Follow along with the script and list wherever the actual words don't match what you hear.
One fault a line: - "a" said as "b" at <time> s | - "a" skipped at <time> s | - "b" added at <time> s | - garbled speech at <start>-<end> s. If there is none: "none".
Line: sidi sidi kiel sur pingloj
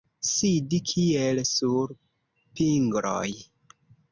- "sidi" skipped at 0.8 s